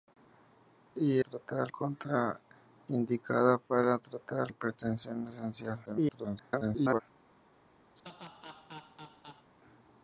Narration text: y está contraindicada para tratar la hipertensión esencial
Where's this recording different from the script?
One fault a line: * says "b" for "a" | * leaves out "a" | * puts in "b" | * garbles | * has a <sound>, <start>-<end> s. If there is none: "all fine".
* says "tratar" for "está"
* leaves out "la"
* garbles
* has a laugh, 8.0-9.5 s